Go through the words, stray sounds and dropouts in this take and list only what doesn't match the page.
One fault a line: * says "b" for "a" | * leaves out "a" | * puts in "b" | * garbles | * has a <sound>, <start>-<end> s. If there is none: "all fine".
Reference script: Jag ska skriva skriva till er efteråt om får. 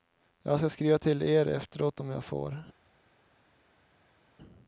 * leaves out "skriva"
* puts in "jag"